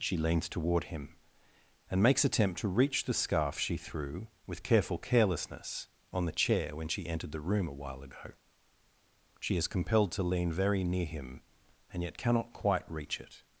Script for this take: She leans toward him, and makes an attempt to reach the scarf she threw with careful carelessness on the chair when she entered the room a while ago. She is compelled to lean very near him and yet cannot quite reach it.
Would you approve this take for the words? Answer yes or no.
no